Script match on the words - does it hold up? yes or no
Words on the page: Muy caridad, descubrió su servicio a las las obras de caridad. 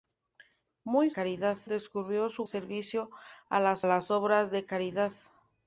yes